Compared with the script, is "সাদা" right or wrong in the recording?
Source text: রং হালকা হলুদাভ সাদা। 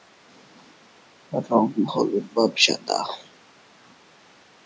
right